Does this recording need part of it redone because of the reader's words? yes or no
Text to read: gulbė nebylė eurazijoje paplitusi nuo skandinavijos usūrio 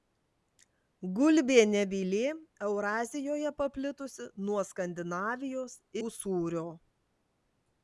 no